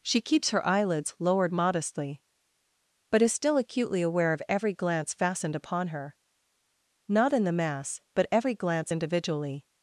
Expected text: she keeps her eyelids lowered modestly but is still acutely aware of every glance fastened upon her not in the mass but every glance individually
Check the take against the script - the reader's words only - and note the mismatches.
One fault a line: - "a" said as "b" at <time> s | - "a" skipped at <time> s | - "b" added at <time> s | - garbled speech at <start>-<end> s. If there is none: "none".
none